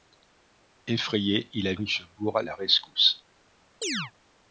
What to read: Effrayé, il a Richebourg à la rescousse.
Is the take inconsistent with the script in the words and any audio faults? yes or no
yes